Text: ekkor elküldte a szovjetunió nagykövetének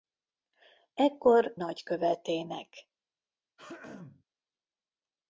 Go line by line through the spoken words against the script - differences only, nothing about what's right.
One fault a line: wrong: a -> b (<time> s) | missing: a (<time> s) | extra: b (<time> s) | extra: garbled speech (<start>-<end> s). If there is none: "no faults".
missing: elküldte a szovjetunió (1.6 s)